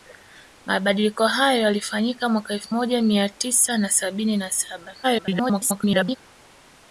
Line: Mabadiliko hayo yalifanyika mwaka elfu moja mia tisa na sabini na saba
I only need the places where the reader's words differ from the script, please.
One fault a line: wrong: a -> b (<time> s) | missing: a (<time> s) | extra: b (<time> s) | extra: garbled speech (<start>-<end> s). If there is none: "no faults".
extra: garbled speech (5.0-6.2 s)